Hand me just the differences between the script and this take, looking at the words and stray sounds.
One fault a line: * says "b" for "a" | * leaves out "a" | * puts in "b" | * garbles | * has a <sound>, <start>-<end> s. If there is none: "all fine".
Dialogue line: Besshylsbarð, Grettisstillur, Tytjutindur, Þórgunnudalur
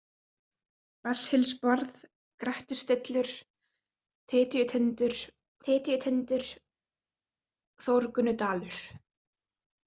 * puts in "Tytjutindur"